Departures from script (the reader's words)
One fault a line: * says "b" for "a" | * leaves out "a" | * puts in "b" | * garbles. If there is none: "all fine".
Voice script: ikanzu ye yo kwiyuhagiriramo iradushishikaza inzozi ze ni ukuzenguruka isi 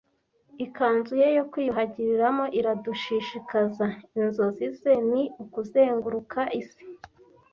all fine